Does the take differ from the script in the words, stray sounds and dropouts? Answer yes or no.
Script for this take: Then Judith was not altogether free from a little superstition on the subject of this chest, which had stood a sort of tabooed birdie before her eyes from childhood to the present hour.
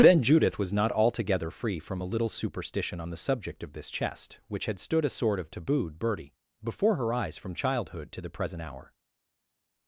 no